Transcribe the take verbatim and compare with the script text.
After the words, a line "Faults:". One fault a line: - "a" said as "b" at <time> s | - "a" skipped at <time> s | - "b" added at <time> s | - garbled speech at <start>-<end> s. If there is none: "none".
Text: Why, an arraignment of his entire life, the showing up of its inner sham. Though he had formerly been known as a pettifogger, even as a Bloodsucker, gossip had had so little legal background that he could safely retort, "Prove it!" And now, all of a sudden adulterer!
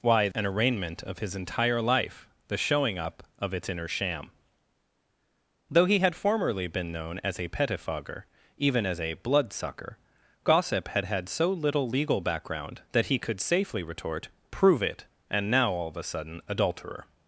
Why, an arraignment of his entire life, the showing up of its inner sham. Though he had formerly been known as a pettifogger, even as a Bloodsucker, gossip had had so little legal background that he could safely retort, "Prove it!" And now, all of a sudden adulterer!
Faults:
none